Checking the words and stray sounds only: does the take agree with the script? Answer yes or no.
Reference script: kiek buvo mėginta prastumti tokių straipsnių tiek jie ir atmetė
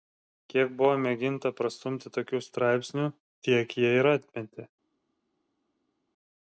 yes